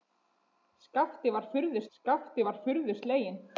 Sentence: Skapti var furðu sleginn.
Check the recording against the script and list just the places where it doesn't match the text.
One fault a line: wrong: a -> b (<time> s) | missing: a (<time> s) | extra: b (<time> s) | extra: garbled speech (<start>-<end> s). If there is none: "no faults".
extra: skapti var furðu (2.0 s)